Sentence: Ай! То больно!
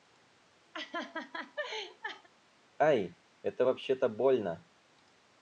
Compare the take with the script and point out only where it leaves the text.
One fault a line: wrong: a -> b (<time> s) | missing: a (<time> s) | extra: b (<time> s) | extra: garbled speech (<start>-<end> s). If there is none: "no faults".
extra: Это вообще (3.4 s)